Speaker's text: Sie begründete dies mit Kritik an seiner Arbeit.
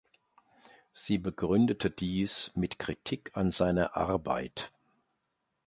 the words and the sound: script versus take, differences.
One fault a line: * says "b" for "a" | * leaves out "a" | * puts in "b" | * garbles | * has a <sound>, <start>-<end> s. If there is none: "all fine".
all fine